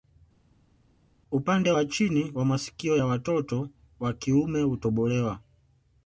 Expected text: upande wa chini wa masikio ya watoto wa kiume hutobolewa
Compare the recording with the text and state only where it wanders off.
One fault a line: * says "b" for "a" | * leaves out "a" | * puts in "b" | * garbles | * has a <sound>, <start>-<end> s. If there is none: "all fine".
all fine